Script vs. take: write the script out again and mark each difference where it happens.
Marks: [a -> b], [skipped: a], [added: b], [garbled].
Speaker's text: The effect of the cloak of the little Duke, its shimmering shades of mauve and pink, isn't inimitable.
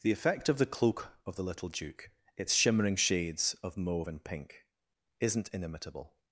The effect of the cloak of the little Duke, its shimmering shades of mauve and pink, isn't inimitable.